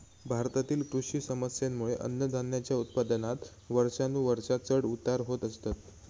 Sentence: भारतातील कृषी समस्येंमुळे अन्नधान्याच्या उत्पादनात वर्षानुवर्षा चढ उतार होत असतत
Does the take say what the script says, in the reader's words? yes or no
yes